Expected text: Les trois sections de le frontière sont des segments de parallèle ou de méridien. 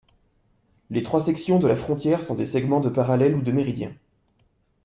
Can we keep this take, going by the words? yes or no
no